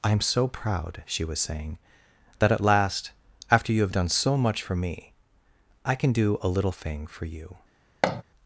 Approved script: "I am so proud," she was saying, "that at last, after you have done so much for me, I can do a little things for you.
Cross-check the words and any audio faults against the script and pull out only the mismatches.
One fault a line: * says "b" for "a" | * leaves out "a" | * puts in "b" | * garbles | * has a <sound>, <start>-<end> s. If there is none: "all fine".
* says "thing" for "things"
* has a thud, 8.0-8.2 s